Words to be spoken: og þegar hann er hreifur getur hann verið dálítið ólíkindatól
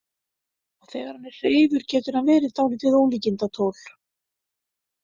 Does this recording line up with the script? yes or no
yes